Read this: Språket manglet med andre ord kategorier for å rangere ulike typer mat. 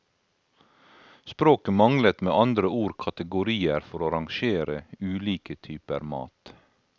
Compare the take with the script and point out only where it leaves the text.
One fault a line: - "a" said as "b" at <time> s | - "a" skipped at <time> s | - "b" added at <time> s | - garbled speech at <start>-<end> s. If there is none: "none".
none